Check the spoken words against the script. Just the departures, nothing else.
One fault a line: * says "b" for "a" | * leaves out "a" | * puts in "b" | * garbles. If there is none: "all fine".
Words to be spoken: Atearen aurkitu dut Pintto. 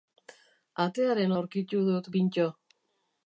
all fine